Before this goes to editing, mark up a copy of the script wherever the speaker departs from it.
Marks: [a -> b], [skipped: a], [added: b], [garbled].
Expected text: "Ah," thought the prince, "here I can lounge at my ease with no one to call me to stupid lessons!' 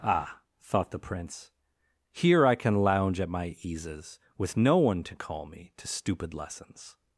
"Ah," thought the prince, "here I can lounge at my [ease -> eases] with no one to call me to stupid lessons!'